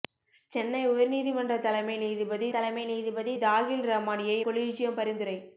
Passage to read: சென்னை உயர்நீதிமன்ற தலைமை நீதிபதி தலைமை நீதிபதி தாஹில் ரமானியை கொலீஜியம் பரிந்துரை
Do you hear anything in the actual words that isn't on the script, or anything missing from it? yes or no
no